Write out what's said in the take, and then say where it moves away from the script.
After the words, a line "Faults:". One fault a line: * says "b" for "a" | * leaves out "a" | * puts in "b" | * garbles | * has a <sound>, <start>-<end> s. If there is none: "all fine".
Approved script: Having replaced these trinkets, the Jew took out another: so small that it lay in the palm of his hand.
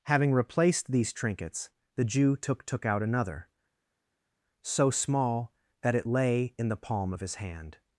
Having replaced these trinkets, the Jew took took out another: so small that it lay in the palm of his hand.
Faults:
* puts in "took"